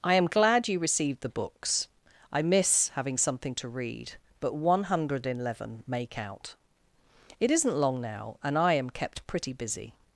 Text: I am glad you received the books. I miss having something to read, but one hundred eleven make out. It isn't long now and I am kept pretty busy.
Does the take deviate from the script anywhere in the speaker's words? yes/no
no